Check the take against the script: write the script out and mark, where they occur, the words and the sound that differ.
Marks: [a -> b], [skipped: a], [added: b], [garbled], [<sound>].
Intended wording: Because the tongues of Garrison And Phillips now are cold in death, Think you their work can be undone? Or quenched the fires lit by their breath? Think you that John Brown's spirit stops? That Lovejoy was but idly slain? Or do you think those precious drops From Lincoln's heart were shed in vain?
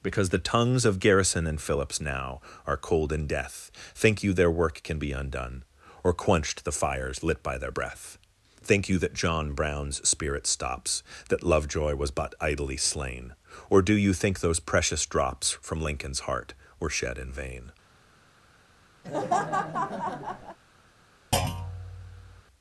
Because the tongues of Garrison And Phillips now are cold in death, Think you their work can be undone? Or quenched the fires lit by their breath? Think you that John Brown's spirit stops? That Lovejoy was but idly slain? Or do you think those precious drops From Lincoln's heart were shed in vain? [laugh] [thud]